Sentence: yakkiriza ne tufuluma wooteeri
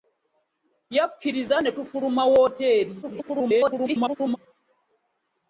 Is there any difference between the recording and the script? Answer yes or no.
yes